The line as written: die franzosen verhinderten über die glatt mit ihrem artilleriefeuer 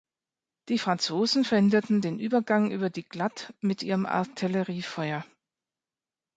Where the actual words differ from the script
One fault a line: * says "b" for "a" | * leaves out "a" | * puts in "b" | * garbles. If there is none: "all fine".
* puts in "den übergang"